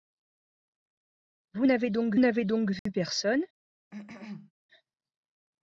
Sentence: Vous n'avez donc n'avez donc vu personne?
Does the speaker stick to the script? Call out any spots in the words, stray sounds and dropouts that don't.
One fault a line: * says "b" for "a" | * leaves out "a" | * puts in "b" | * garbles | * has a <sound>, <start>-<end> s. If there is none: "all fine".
* has a dropout, 2.8-2.9 s
* has a cough, 3.9-4.5 s